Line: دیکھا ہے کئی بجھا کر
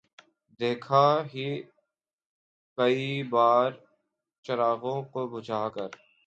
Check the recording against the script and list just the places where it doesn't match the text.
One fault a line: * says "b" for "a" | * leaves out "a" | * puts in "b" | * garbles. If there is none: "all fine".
* puts in "بار چراغوں کو"